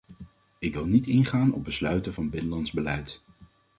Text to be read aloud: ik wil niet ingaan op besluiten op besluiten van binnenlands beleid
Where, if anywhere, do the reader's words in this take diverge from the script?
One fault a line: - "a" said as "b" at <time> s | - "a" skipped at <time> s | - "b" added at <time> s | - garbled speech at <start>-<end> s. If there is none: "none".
- "op besluiten" skipped at 2.1 s